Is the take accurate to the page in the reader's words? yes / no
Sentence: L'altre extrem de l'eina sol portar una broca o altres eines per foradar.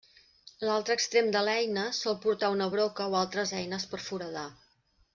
yes